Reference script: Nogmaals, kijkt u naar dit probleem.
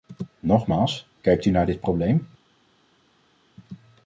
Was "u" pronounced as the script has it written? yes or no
yes